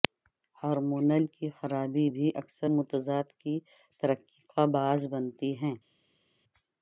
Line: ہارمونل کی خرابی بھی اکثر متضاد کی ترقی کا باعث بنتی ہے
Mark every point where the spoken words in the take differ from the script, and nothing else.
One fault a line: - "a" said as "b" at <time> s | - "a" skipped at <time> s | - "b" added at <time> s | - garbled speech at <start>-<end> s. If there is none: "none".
none